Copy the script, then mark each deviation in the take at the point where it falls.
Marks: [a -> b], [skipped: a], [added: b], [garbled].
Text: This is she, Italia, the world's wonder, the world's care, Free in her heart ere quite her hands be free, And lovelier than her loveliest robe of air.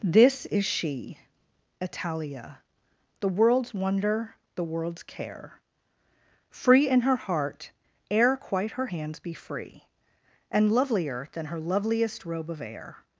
This is she, Italia, the world's wonder, the world's care, Free in her heart ere quite her hands be free, And lovelier than her loveliest robe of air.